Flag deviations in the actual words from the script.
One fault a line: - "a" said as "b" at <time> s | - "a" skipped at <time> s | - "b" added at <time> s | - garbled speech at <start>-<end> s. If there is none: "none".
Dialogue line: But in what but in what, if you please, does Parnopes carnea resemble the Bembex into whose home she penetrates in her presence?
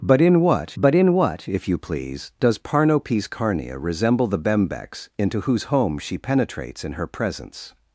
none